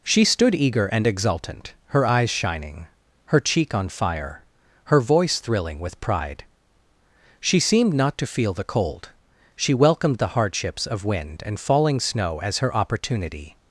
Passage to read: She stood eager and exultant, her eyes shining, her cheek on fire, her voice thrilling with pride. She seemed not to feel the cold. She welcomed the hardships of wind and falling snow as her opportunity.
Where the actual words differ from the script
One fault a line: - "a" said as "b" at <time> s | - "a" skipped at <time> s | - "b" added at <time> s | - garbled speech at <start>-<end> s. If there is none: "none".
none